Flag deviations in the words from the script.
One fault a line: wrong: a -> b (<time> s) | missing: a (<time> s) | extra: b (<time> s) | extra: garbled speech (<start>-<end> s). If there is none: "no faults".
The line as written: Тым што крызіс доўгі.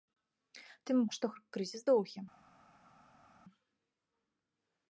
no faults